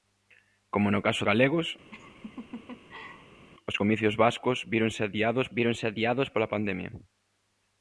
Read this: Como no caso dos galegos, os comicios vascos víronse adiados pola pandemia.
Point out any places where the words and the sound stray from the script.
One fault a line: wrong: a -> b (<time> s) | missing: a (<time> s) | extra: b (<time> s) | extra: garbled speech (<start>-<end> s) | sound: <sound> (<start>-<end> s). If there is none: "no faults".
missing: dos (1.2 s)
sound: laugh (1.9-3.5 s)
extra: víronse adiados (5.6 s)